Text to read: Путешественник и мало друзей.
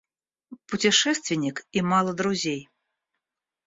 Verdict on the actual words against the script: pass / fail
pass